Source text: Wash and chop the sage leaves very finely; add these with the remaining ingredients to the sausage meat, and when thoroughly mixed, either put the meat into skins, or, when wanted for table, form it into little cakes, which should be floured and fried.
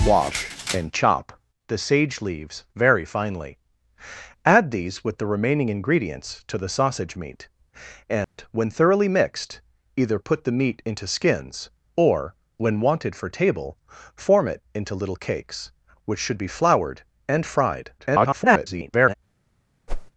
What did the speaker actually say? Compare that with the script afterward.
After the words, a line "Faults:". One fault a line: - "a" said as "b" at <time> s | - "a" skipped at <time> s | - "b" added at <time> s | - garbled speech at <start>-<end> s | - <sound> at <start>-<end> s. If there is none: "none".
Wash and chop the sage leaves very finely; add these with the remaining ingredients to the sausage meat, and when thoroughly mixed, either put the meat into skins, or, when wanted for table, form it into little cakes, which should be floured and fried. [garbled]
Faults:
- dropout at 8.2-8.4 s
- garbled speech at 18.0-19.1 s
- whoosh at 19.9-20.1 s